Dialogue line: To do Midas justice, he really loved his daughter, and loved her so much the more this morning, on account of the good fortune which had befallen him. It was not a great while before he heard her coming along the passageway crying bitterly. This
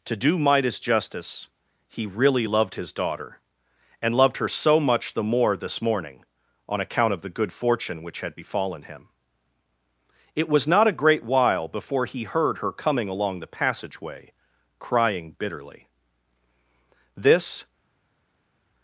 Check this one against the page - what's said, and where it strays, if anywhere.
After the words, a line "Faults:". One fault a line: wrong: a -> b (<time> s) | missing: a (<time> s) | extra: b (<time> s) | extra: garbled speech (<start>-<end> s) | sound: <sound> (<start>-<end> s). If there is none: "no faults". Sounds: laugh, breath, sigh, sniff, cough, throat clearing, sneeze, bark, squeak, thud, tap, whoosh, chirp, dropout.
To do Midas justice, he really loved his daughter, and loved her so much the more this morning, on account of the good fortune which had befallen him. It was not a great while before he heard her coming along the passageway crying bitterly. This
Faults:
no faults